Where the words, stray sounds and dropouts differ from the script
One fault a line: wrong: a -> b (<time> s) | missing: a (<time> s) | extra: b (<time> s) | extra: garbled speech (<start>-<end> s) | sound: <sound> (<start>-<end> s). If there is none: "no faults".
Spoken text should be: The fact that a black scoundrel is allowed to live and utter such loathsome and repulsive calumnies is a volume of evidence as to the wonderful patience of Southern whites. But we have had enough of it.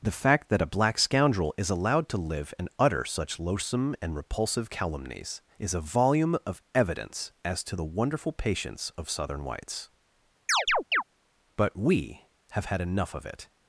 sound: chirp (10.5-11.0 s)